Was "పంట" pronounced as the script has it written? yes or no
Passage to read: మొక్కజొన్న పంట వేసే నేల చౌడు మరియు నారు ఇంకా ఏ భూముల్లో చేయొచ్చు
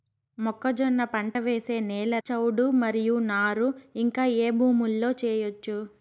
yes